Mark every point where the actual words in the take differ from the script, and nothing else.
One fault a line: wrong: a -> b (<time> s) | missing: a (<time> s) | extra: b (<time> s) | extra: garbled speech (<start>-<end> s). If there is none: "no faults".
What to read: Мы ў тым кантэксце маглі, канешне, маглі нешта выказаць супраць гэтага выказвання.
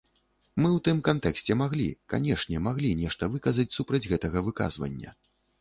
no faults